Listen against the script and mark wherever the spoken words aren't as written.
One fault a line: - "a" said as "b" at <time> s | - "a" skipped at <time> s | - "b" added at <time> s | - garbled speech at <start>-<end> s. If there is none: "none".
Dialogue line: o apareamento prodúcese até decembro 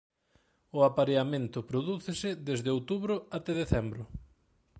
- "desde outubro" added at 2.5 s